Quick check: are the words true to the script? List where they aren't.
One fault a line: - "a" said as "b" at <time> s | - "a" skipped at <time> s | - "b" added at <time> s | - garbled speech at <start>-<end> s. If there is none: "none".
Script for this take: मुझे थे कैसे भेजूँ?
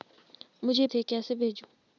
none